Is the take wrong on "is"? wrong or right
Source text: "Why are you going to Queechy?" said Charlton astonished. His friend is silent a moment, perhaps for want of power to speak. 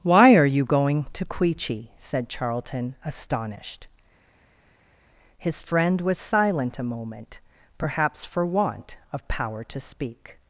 wrong